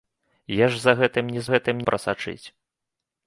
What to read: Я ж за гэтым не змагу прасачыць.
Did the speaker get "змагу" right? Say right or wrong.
wrong